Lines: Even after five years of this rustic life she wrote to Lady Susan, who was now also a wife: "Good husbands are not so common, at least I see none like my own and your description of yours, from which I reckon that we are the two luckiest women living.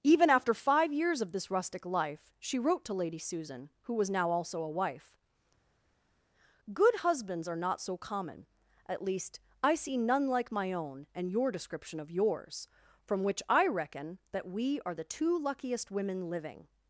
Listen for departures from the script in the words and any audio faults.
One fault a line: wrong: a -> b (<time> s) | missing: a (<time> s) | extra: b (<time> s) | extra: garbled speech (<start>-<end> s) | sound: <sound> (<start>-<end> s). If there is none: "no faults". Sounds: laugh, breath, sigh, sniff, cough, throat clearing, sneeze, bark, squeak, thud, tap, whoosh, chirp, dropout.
no faults